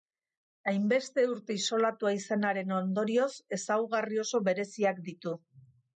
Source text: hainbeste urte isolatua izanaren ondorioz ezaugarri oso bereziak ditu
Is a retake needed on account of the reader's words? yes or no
no